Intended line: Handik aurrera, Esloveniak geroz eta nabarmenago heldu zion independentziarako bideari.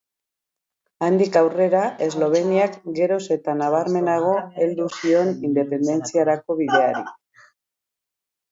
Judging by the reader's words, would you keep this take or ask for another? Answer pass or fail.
pass